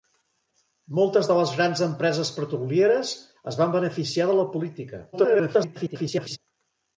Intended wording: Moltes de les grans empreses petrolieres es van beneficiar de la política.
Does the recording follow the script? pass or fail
fail